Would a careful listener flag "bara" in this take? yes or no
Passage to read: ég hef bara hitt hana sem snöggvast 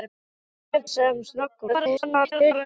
yes